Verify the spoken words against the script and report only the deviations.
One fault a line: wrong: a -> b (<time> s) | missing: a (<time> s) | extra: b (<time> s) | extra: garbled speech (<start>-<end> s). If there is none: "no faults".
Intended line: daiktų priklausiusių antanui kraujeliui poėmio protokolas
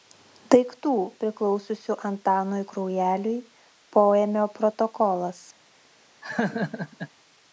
no faults